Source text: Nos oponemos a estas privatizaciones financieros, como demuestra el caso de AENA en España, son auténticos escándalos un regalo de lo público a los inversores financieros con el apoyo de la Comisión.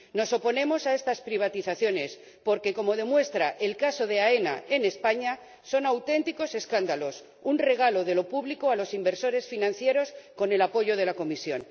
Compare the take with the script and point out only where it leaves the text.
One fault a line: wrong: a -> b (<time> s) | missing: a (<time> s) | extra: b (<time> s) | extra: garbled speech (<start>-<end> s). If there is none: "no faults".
wrong: financieros -> porque (2.4 s)